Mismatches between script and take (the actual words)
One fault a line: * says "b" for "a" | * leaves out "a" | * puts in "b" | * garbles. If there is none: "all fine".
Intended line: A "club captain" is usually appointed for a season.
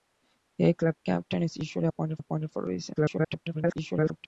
* puts in "appointed"
* garbles